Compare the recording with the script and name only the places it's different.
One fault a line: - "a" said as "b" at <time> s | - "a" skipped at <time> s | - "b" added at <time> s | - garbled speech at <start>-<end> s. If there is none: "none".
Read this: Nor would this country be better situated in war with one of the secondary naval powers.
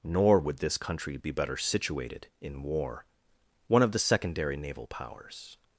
- "with" skipped at 3.1 s